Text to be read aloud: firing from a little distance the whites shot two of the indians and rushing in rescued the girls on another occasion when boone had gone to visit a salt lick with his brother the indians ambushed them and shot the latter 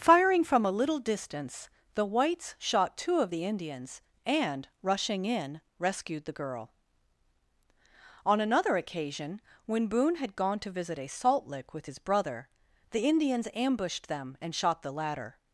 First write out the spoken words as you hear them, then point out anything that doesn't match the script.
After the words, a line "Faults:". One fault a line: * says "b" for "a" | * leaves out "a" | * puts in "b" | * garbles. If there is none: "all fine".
firing from a little distance the whites shot two of the indians and rushing in rescued the girl on another occasion when boone had gone to visit a salt lick with his brother the indians ambushed them and shot the latter
Faults:
* says "girl" for "girls"